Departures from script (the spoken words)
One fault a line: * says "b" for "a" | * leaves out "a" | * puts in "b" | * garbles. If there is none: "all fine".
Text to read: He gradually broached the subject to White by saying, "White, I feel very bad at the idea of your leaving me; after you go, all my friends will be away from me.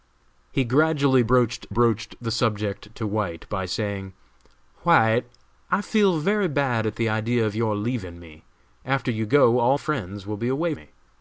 * puts in "broached"
* leaves out "my"
* leaves out "from"